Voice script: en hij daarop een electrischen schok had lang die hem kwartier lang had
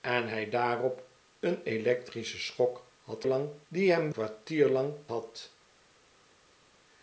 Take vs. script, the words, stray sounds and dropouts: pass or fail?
pass